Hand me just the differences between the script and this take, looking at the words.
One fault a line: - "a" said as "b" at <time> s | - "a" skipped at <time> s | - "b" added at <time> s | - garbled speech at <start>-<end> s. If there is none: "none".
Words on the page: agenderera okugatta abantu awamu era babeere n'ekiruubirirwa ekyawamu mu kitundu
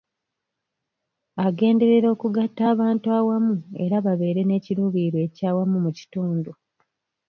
none